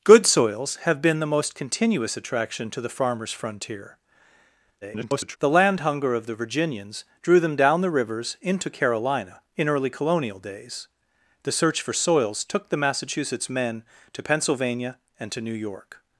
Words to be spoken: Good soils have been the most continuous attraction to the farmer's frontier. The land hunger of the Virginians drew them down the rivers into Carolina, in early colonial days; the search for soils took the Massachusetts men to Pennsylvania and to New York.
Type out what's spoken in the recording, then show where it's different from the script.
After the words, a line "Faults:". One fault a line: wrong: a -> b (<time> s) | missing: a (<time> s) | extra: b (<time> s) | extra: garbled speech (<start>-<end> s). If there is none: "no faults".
Good soils have been the most continuous attraction to the farmer's frontier. [garbled] The land hunger of the Virginians drew them down the rivers into Carolina, in early colonial days; the search for soils took the Massachusetts men to Pennsylvania and to New York.
Faults:
extra: garbled speech (4.8-5.4 s)